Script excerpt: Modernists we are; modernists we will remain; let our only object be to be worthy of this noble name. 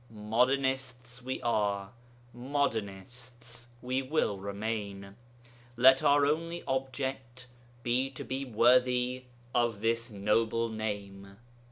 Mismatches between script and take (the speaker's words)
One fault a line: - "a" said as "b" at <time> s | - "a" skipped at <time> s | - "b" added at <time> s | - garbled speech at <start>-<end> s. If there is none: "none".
none